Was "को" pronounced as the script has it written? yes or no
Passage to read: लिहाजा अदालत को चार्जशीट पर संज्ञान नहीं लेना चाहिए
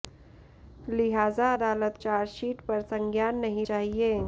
no